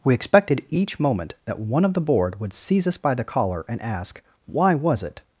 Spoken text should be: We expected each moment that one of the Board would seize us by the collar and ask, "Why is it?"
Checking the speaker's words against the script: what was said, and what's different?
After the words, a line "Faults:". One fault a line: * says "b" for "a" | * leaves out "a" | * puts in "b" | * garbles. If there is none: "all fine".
We expected each moment that one of the Board would seize us by the collar and ask, "Why was it?"
Faults:
* says "was" for "is"